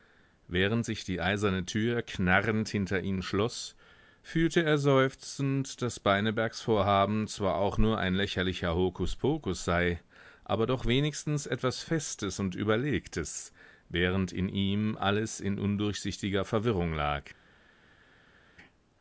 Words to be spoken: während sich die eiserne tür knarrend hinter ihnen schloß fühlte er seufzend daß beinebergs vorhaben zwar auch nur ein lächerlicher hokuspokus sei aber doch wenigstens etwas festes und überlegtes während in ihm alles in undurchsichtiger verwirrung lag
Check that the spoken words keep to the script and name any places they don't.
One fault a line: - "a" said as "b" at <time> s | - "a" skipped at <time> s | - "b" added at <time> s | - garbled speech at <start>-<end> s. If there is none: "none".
none